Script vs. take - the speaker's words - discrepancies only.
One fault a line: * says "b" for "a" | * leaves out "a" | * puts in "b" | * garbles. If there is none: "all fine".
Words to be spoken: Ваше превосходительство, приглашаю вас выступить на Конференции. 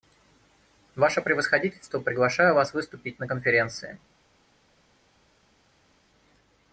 all fine